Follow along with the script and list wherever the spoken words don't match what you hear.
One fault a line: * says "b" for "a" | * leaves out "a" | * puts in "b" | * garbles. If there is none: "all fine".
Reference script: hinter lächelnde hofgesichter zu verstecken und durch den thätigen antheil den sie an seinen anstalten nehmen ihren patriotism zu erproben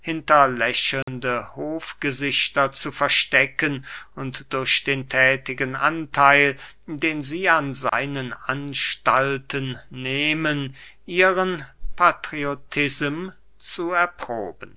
all fine